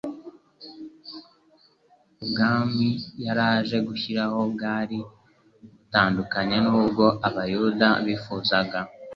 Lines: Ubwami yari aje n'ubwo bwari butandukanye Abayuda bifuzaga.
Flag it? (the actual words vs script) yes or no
yes